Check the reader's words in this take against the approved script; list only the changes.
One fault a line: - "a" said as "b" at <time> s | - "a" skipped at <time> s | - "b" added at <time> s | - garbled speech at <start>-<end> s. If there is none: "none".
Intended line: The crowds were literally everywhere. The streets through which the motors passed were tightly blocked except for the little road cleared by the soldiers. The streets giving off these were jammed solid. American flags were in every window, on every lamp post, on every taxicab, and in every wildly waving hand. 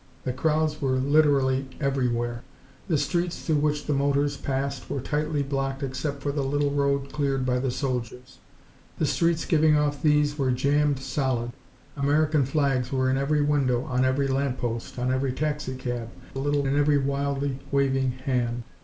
- "and" said as "little" at 16.3 s